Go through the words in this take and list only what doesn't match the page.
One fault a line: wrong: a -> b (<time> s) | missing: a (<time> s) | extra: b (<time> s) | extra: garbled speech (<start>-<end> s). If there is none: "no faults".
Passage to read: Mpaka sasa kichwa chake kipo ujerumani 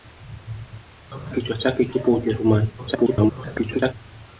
missing: sasa (1.3 s)
extra: garbled speech (2.8-3.9 s)